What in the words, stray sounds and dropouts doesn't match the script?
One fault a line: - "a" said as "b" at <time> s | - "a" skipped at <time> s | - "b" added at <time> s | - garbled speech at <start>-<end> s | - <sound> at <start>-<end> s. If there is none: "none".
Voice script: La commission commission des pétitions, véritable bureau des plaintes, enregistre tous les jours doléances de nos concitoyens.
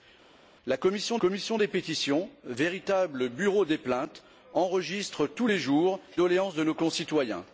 none